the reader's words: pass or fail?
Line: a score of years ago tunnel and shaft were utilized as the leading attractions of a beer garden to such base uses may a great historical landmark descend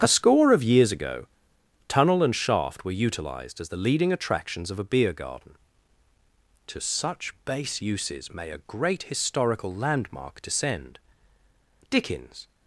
fail